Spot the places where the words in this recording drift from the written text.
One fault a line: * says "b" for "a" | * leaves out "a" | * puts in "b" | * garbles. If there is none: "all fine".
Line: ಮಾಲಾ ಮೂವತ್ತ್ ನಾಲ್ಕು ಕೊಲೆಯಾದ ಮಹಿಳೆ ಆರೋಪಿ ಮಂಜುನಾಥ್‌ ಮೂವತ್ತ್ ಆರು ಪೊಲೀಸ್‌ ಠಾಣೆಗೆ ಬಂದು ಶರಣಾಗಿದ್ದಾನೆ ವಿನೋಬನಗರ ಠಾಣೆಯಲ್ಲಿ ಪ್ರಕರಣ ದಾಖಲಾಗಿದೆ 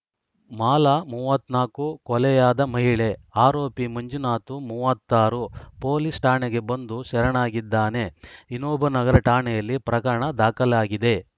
all fine